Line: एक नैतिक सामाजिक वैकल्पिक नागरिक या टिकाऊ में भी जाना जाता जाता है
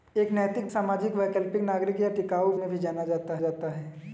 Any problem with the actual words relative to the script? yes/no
no